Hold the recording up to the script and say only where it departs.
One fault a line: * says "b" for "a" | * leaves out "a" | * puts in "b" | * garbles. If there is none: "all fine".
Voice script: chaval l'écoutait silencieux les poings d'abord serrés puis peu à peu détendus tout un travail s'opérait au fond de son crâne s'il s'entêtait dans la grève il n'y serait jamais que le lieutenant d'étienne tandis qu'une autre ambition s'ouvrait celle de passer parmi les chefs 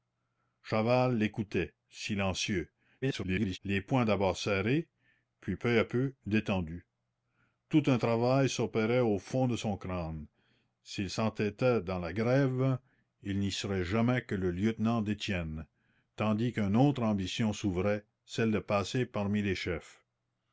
* garbles